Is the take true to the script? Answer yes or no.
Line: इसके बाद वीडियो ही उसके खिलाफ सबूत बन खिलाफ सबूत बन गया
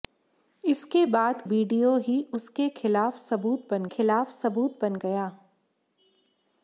yes